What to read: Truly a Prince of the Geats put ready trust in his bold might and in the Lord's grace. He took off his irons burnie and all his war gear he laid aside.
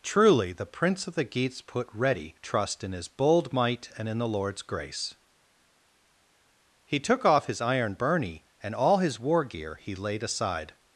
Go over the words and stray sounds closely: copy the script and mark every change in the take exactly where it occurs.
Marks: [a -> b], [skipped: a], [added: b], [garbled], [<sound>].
Truly [a -> the] Prince of the Geats put ready trust in his bold might and in the Lord's grace. He took off his [irons -> iron] burnie and all his war gear he laid aside.